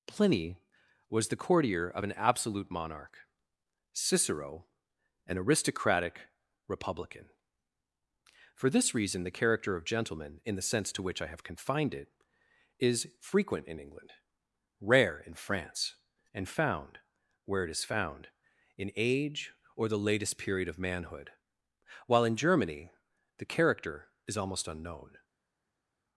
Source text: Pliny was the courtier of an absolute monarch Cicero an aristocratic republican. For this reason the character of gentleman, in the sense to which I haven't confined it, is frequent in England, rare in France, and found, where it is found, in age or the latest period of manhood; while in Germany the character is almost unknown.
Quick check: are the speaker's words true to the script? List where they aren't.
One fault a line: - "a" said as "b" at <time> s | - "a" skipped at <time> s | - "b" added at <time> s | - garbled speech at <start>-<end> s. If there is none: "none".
- "haven't" said as "have" at 11.3 s